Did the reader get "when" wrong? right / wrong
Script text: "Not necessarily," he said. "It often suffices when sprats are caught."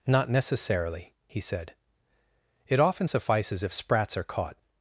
wrong